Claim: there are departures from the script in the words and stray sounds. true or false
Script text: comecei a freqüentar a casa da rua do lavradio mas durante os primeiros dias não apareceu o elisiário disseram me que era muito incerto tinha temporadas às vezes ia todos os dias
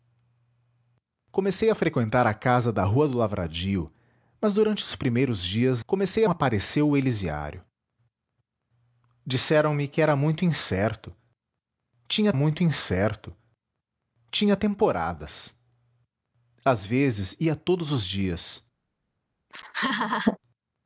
true